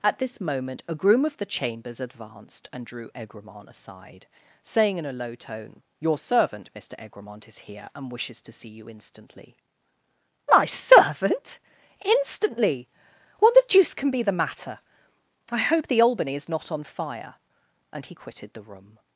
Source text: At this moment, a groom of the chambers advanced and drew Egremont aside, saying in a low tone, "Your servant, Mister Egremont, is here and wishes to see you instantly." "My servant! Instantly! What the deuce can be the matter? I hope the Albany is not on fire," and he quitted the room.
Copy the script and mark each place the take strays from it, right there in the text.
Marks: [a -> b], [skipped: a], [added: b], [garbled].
At this moment, a groom of the chambers advanced and drew Egremont aside, saying in a low tone, "Your servant, Mister Egremont, is here and wishes to see you instantly." "My servant! Instantly! What the deuce can be the matter? I hope the Albany is not on fire," and he quitted the room.